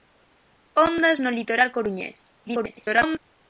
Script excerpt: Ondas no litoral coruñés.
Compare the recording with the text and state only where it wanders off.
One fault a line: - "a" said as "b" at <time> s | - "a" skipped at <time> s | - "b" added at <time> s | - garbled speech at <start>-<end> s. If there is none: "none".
- garbled speech at 2.4-3.2 s